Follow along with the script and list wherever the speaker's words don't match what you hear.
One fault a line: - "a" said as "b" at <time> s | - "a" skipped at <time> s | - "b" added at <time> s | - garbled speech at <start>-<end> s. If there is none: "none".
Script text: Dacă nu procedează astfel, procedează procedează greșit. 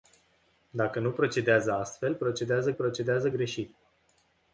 none